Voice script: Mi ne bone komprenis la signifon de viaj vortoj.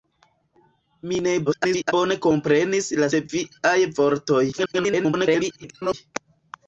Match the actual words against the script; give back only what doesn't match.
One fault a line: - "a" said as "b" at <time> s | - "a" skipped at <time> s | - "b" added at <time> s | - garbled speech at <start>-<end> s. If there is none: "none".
- garbled speech at 1.5-1.9 s
- "signifon" skipped at 3.1 s
- garbled speech at 4.5-5.9 s